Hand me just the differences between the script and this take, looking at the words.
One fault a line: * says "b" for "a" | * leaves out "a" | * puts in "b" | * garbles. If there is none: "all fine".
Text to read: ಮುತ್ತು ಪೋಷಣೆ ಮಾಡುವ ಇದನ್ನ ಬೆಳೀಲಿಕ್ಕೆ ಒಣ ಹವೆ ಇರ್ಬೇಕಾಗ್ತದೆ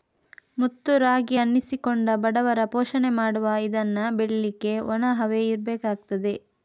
* puts in "ರಾಗಿ ಅನ್ನಿಸಿಕೊಂಡ ಬಡವರ"